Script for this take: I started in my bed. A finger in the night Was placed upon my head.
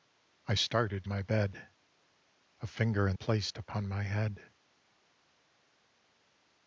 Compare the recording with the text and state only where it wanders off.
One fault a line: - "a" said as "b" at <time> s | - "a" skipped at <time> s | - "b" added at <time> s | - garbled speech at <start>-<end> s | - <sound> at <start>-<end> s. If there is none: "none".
- "in" skipped at 1.1 s
- "the night Was" skipped at 3.2 s